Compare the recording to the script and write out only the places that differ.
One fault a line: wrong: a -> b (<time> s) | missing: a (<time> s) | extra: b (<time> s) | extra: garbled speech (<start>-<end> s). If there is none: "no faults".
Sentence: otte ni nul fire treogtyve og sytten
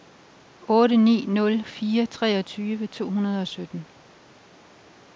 extra: to hundrede (2.9 s)